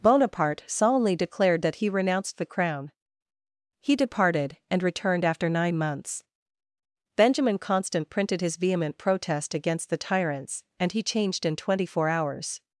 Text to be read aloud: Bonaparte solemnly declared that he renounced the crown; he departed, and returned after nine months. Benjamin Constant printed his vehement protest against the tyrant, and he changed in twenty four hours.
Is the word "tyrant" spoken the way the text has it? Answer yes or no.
no